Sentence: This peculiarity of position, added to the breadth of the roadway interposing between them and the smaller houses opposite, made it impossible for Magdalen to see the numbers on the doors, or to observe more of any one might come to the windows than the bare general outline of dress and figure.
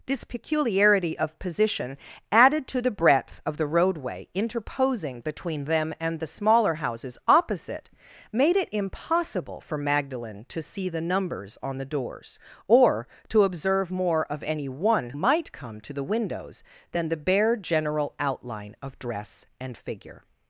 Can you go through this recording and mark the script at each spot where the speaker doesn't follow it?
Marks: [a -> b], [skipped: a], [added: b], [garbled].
This peculiarity of position, added to the breadth of the roadway interposing between them and the smaller houses opposite, made it impossible for Magdalen to see the numbers on the doors, or to observe more of any one might come to the windows than the bare general outline of dress and figure.